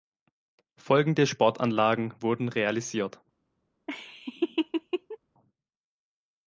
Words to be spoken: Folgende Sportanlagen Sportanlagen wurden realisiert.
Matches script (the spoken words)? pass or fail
fail